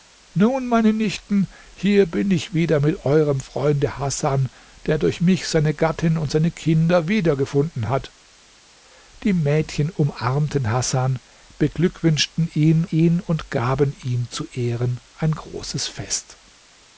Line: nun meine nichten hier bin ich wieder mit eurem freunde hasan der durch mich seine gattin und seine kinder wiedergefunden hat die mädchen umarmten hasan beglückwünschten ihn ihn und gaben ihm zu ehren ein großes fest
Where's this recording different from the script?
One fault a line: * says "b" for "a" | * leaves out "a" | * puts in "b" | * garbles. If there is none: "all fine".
all fine